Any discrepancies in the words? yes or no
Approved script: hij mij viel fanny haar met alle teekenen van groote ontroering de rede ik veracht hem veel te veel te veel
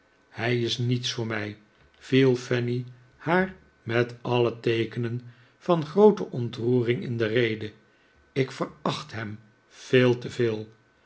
yes